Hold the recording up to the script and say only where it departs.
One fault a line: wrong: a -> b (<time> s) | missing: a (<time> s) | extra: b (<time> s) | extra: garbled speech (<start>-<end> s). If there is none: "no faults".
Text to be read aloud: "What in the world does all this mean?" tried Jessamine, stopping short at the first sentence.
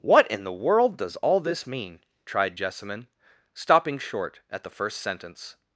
no faults